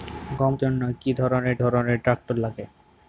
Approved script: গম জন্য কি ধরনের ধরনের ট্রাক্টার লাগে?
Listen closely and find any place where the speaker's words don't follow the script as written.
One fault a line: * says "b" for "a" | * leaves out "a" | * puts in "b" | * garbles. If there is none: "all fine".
all fine